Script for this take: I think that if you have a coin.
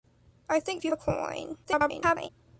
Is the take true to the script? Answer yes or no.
no